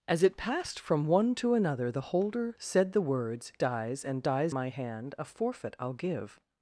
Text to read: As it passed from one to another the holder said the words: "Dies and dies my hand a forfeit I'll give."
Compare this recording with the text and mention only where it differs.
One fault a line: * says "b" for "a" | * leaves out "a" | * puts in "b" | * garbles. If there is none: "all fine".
all fine